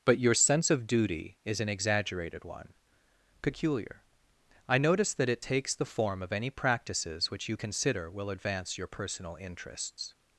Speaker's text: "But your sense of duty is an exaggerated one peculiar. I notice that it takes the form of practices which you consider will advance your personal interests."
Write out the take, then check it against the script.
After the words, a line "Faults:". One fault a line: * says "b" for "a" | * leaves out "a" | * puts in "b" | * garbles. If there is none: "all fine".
"But your sense of duty is an exaggerated one peculiar. I notice that it takes the form of any practices which you consider will advance your personal interests."
Faults:
* puts in "any"